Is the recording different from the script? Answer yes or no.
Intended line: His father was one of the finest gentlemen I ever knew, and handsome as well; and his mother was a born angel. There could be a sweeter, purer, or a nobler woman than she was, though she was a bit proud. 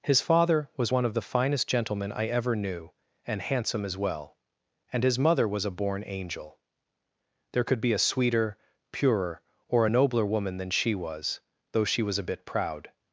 no